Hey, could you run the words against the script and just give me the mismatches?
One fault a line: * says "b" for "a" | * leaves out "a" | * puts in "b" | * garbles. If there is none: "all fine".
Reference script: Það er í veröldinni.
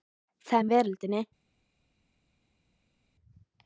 all fine